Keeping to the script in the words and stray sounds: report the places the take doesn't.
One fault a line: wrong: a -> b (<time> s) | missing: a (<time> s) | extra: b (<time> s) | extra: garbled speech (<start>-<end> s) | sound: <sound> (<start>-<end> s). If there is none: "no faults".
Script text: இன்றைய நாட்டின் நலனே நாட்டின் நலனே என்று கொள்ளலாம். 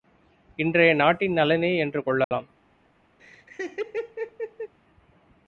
missing: நாட்டின் நலனே (1.8 s)
sound: dropout (2.2-2.3 s)
sound: laugh (3.2-4.7 s)